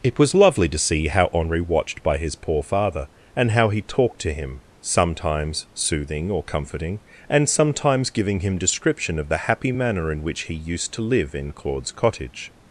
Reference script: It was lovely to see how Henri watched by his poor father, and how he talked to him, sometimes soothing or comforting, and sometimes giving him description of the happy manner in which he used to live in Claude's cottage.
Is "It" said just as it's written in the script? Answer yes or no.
yes